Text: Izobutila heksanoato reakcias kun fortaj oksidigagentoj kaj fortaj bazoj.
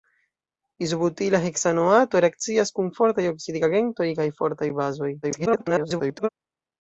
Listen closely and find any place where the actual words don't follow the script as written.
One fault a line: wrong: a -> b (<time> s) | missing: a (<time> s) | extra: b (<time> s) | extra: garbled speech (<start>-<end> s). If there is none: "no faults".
extra: garbled speech (5.2-6.3 s)